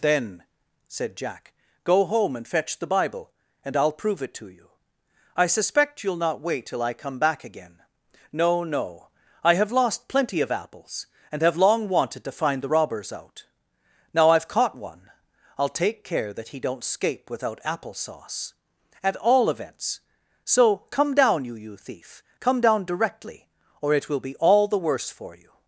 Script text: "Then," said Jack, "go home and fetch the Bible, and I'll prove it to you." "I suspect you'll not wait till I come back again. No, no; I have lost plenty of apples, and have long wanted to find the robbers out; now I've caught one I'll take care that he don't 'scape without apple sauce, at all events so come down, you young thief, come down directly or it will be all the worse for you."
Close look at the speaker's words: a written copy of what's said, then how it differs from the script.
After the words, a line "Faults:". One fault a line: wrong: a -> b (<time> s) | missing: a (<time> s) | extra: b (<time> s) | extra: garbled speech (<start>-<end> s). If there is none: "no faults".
"Then," said Jack, "go home and fetch the Bible, and I'll prove it to you." "I suspect you'll not wait till I come back again. No, no; I have lost plenty of apples, and have long wanted to find the robbers out; now I've caught one I'll take care that he don't 'scape without apple sauce, at all events so come down, you you thief, come down directly or it will be all the worse for you."
Faults:
wrong: young -> you (21.5 s)